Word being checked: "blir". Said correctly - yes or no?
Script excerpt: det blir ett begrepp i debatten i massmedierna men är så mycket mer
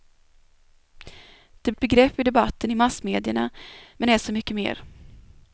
no